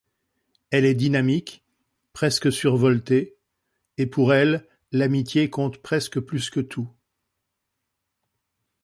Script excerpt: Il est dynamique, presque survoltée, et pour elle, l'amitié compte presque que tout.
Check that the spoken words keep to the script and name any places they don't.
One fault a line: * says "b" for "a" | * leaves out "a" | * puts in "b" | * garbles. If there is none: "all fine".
* says "Elle" for "Il"
* puts in "plus"